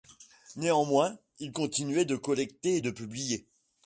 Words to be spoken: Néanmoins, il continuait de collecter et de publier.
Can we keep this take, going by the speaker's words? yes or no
yes